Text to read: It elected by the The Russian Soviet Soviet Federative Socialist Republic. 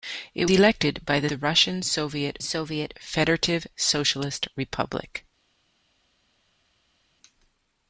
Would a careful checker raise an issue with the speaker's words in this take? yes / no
no